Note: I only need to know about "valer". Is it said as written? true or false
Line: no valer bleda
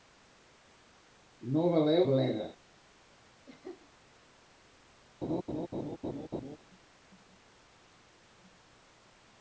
true